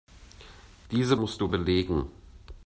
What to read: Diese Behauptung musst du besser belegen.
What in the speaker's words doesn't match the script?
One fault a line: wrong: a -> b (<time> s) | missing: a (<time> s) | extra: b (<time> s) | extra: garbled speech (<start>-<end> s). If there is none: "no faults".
missing: Behauptung (1.1 s)
missing: besser (1.5 s)